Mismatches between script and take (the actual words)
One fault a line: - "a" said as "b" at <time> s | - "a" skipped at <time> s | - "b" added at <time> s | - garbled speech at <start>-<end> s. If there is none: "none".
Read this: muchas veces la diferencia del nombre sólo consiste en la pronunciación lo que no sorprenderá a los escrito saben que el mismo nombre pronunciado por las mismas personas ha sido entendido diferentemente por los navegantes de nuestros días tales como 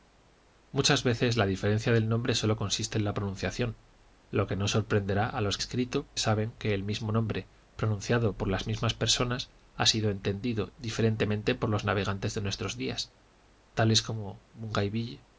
none